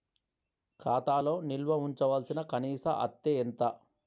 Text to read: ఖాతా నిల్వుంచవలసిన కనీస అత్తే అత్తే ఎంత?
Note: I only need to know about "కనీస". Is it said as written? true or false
true